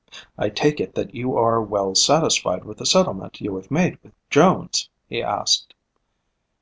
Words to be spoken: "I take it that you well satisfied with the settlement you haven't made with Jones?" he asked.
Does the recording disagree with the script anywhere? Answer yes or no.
yes